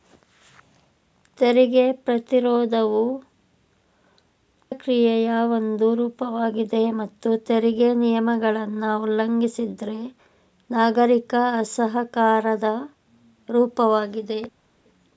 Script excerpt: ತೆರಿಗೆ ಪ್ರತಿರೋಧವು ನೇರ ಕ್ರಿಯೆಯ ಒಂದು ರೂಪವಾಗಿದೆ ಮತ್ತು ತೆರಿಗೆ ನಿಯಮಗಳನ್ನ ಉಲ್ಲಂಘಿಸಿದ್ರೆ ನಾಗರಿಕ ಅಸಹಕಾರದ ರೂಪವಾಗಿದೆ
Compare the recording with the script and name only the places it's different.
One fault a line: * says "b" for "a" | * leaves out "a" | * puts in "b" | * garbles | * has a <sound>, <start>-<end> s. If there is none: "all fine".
* leaves out "ನೇರ"